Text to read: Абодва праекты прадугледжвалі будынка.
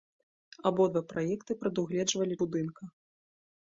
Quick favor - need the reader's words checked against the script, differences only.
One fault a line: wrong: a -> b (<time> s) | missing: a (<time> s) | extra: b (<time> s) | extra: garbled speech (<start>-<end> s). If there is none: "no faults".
no faults